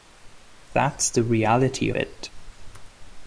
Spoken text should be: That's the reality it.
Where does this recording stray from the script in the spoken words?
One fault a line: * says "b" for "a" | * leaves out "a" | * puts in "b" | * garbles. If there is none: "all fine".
all fine